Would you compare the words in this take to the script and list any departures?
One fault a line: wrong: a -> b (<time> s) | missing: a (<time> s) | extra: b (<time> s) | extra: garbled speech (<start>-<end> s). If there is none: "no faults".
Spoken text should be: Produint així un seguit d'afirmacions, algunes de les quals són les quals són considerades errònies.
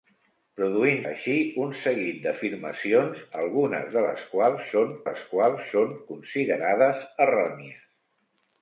no faults